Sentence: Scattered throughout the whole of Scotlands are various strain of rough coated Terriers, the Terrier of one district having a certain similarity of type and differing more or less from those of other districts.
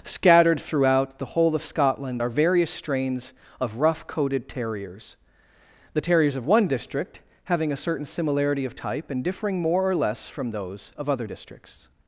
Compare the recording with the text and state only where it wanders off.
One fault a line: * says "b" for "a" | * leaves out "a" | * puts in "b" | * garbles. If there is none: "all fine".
* says "Scotland" for "Scotlands"
* says "strains" for "strain"
* says "Terriers" for "Terrier"